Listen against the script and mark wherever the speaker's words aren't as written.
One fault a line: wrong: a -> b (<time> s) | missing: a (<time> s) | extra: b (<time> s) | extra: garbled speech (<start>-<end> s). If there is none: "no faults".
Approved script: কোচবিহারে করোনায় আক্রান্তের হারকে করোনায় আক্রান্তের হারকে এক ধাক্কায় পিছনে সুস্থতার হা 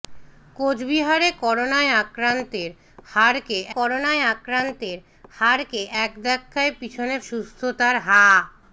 no faults